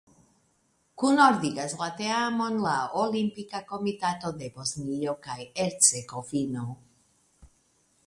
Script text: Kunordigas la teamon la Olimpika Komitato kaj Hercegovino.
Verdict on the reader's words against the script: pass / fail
fail